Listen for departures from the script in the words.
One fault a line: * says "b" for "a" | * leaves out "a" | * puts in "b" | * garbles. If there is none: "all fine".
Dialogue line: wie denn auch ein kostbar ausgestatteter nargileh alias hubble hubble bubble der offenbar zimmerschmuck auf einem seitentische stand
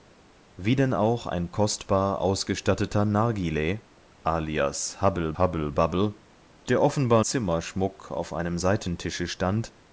all fine